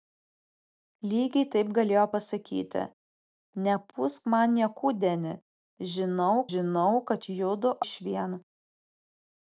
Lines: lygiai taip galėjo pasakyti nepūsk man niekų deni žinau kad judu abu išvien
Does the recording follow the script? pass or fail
fail